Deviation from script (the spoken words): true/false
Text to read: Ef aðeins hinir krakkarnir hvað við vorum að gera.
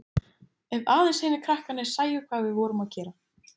true